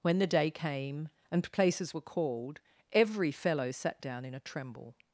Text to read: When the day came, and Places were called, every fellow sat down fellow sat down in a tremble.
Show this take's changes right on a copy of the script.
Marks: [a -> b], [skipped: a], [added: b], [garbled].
When the day came, and Places were called, every fellow sat down [skipped: fellow sat down] in a tremble.